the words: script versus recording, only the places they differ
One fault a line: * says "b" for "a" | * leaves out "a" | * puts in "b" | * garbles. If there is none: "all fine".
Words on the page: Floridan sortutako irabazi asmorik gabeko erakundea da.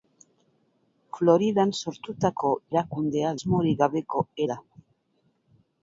* says "erakundea" for "irabazi"
* leaves out "erakundea"